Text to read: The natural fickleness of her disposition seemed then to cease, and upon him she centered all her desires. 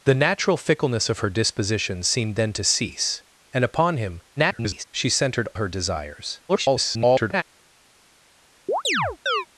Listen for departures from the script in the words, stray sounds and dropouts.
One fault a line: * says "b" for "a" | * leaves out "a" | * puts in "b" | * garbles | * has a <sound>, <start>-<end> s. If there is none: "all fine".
* garbles
* leaves out "all"
* garbles
* has a chirp, 8.7-9.5 s